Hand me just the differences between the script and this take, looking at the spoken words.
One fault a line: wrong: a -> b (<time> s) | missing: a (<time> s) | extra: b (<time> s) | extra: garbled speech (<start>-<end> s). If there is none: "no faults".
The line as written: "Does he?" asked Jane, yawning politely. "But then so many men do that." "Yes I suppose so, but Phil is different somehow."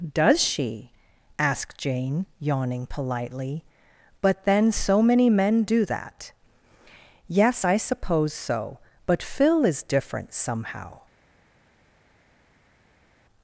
wrong: he -> she (0.4 s)